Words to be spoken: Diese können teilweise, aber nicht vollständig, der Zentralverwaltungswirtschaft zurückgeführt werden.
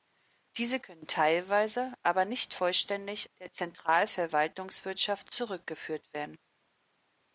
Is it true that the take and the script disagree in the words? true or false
false